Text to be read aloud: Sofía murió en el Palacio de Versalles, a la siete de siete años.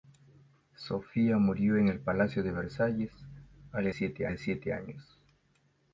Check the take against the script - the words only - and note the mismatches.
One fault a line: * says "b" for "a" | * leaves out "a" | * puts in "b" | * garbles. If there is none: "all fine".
all fine